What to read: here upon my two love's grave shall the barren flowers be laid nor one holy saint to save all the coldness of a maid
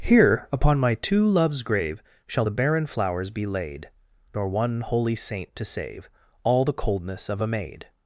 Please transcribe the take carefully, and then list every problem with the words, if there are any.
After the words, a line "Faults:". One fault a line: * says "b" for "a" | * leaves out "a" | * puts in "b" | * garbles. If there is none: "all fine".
here upon my two love's grave shall the barren flowers be laid nor one holy saint to save all the coldness of a maid
Faults:
all fine